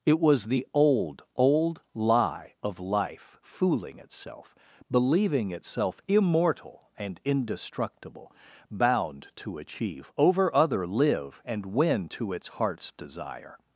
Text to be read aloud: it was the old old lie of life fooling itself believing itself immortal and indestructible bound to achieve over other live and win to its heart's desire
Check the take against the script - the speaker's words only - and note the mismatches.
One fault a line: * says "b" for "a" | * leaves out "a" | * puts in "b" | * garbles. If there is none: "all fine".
all fine